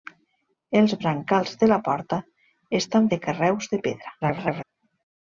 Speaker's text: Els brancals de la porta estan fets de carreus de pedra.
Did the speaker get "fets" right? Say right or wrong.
wrong